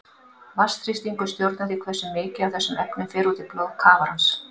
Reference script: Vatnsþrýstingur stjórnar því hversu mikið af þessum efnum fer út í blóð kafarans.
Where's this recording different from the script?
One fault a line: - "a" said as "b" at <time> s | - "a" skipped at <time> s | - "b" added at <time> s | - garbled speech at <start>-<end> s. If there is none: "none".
none